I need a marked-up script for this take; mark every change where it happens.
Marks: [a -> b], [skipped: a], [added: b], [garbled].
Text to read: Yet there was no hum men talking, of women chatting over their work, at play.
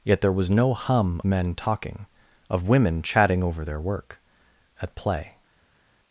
Yet there was no hum men talking, of women chatting over their work, at play.